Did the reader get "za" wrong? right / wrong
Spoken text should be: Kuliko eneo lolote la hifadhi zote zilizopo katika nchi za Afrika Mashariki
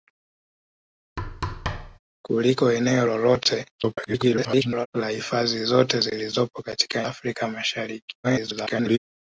wrong